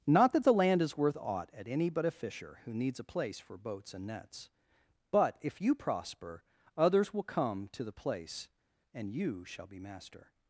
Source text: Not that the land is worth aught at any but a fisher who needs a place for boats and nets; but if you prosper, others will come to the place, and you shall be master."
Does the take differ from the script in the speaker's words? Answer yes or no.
no